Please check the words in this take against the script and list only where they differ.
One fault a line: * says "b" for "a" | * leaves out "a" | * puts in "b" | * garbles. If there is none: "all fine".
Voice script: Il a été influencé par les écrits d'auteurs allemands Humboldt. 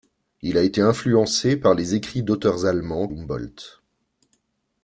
all fine